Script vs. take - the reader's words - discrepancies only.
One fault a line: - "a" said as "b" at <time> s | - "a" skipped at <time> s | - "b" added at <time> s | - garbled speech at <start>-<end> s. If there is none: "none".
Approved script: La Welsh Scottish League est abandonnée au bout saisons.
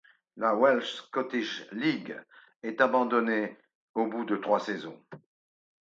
- "de trois" added at 4.2 s